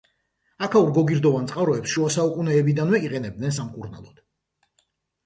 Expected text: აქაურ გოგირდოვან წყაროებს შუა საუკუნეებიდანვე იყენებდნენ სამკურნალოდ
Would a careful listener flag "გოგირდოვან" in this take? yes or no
no